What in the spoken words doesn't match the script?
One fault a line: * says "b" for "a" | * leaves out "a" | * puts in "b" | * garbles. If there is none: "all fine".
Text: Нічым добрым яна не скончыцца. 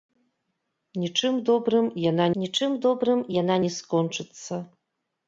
* puts in "нічым добрым яна"